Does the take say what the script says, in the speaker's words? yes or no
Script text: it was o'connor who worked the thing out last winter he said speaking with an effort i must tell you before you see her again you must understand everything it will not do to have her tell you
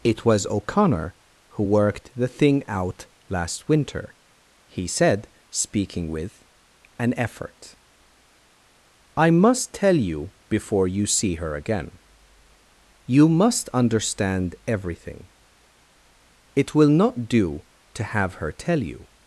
yes